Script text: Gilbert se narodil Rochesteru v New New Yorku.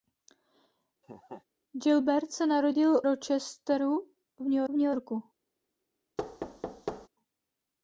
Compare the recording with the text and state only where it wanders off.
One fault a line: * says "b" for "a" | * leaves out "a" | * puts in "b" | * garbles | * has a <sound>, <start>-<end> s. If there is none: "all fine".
* has a laugh, 1.0-1.4 s
* has a thud, 6.2-7.1 s